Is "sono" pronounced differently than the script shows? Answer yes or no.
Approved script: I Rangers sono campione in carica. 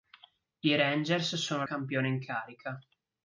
no